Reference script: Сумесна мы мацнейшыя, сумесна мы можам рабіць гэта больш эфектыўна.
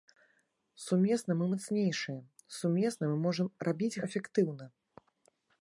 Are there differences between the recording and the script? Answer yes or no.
yes